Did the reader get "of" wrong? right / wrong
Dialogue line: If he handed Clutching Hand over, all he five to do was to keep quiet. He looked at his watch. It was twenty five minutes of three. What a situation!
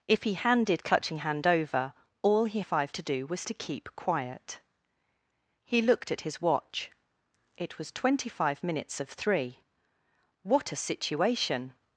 right